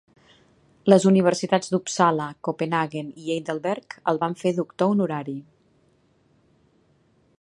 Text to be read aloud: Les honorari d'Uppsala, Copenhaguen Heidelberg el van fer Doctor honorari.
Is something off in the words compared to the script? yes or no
yes